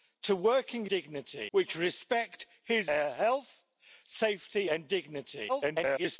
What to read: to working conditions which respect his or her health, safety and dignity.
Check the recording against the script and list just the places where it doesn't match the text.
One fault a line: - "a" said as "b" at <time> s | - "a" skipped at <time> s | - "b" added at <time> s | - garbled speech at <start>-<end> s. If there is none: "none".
- "conditions" said as "dignity" at 0.9 s
- "or" skipped at 2.9 s
- garbled speech at 5.5-6.2 s